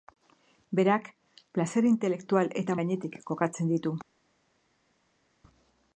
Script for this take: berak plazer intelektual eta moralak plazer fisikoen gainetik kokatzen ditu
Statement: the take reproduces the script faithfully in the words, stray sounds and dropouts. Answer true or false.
false